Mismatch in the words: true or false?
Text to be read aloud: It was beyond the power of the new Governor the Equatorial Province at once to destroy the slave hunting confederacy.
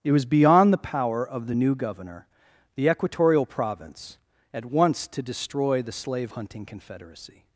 false